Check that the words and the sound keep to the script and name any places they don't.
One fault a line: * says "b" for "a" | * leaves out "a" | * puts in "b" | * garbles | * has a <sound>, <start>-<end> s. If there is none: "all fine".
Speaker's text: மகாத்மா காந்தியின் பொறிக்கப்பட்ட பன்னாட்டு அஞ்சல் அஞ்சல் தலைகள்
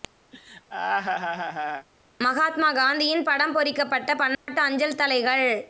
* has a laugh, 0.3-1.9 s
* puts in "படம்"
* has a dropout, 4.3-4.5 s
* leaves out "அஞ்சல்"